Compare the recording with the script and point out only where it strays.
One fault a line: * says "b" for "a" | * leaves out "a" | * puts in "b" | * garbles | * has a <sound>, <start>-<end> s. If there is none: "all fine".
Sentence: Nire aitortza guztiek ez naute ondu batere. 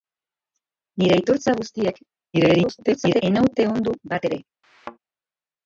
* garbles
* has a thud, 4.6-5.0 s